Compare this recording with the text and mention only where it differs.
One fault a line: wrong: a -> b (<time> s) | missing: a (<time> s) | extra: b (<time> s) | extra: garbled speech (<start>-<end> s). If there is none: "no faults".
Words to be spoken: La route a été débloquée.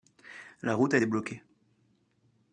missing: été (1.0 s)